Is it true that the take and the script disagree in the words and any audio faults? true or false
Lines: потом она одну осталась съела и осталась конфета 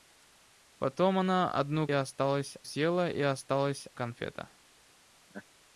true